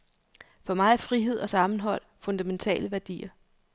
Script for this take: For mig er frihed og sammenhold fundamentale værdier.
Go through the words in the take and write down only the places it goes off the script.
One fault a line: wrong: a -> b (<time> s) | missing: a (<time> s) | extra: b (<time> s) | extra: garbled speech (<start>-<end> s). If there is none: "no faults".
no faults